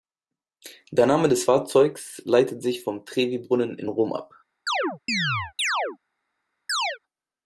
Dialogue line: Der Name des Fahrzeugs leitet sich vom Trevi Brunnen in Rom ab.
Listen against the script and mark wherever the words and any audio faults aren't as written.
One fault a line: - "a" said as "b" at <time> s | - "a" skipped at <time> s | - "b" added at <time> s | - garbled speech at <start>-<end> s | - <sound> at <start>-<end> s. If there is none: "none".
- chirp at 4.7-6.0 s
- chirp at 6.7-7.0 s